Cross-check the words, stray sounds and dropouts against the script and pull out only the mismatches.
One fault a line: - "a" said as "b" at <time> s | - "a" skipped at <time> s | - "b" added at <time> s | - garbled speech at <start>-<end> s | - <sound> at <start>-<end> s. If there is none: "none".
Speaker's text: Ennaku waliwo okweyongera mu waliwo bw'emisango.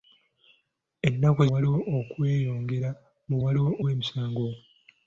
none